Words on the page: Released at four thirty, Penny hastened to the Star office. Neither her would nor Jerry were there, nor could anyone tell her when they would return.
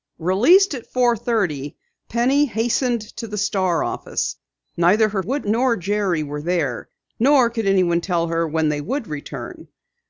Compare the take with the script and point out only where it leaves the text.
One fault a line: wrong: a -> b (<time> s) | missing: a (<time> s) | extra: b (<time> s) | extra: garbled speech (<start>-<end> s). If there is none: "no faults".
no faults